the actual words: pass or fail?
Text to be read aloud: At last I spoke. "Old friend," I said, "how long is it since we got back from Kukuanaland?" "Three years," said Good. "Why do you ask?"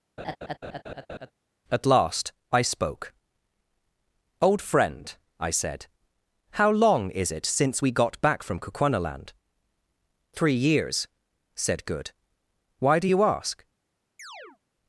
pass